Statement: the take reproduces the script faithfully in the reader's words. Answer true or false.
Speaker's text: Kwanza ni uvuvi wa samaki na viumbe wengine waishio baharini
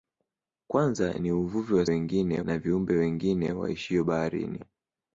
false